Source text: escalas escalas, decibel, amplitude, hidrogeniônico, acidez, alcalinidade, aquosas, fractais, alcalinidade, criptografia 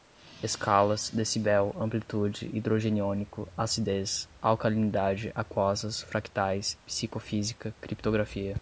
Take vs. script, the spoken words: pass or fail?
fail